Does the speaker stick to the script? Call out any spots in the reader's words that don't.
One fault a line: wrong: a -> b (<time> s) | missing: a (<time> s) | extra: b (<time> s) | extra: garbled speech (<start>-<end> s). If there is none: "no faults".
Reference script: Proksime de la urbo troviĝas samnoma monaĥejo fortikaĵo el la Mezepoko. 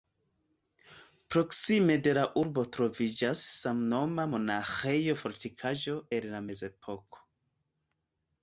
no faults